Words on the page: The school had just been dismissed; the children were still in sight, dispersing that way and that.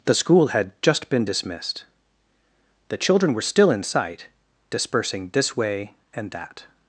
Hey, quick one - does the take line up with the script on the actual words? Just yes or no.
no